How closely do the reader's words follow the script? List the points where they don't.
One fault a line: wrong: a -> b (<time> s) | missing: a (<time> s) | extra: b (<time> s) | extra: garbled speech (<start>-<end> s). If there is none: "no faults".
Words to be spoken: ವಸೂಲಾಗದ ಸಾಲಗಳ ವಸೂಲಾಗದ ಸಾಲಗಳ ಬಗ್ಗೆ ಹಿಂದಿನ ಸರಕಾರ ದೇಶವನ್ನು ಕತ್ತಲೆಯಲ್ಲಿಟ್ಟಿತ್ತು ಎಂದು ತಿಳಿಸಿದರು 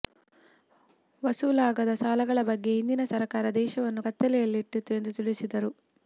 missing: ವಸೂಲಾಗದ ಸಾಲಗಳ (2.4 s)